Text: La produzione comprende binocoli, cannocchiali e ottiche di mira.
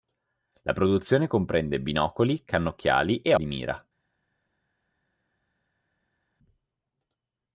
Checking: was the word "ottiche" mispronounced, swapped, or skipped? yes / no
yes